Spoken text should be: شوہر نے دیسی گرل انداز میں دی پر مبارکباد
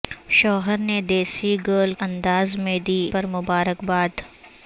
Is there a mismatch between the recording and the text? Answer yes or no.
no